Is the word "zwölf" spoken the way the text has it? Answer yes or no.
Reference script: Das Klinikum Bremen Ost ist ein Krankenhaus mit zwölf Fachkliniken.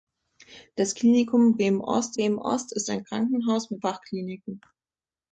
no